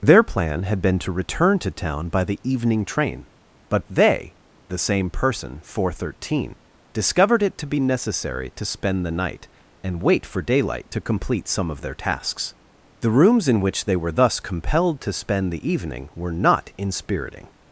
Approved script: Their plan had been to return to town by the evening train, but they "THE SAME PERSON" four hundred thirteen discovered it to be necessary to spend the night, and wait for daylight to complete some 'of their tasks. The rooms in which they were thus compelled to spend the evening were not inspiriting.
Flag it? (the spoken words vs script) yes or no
no